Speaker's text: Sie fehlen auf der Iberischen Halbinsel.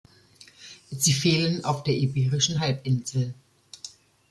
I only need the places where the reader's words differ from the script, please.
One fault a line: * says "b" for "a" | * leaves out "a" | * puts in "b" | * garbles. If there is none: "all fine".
all fine